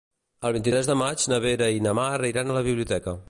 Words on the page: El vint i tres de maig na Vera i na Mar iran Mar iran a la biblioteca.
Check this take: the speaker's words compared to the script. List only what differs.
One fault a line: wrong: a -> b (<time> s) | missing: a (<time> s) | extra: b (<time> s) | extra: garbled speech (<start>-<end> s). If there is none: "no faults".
missing: Mar iran (2.5 s)